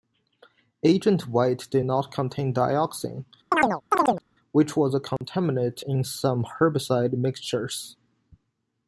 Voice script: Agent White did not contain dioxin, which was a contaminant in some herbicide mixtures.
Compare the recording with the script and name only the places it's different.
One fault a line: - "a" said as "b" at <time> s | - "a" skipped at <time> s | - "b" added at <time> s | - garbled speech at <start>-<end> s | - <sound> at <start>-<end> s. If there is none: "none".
- chirp at 3.5-4.2 s
- dropout at 5.2-5.2 s